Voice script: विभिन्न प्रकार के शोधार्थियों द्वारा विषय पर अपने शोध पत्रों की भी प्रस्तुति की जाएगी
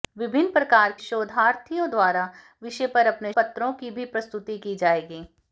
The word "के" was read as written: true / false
false